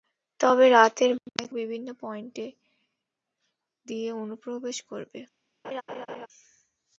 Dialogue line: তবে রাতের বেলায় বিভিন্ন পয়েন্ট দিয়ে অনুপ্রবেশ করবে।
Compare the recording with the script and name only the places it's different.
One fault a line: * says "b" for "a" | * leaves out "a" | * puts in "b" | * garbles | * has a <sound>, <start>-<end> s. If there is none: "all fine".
* has a laugh, 5.6-6.3 s